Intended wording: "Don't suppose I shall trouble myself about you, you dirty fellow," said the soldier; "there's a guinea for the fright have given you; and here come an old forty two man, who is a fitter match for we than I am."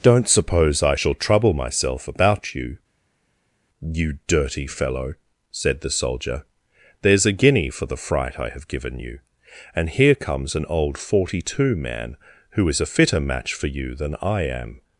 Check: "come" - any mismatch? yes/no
yes